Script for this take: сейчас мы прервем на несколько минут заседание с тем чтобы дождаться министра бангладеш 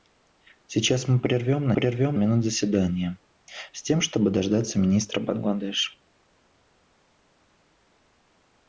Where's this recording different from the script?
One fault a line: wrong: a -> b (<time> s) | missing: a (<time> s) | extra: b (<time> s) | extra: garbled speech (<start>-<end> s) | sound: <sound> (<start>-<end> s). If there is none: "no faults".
wrong: несколько -> прервем (1.7 s)